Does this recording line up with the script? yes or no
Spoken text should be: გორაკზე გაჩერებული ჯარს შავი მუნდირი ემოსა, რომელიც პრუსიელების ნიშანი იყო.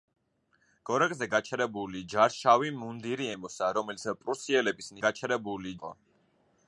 no